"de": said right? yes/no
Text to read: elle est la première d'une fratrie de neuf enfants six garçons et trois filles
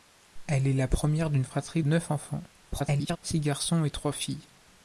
no